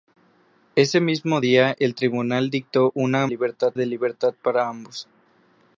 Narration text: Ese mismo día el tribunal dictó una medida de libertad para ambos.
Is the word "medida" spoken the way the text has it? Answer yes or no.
no